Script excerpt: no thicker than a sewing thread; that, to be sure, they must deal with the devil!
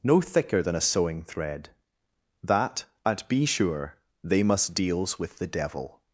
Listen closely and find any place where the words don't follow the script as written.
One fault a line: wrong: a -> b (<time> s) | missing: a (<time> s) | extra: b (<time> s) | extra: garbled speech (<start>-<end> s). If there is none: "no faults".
wrong: to -> at (3.0 s)
wrong: deal -> deals (4.7 s)